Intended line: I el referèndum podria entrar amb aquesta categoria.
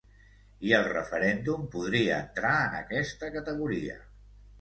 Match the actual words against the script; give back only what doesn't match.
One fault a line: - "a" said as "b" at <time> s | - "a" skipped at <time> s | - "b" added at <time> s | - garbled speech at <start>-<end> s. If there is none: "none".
- "amb" said as "en" at 2.7 s